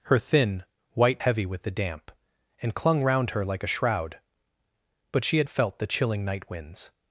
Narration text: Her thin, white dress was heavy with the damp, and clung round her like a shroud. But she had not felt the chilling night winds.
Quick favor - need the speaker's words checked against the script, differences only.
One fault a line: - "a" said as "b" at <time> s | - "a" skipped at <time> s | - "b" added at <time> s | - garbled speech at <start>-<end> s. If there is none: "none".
- "dress was" skipped at 1.2 s
- "not" skipped at 5.5 s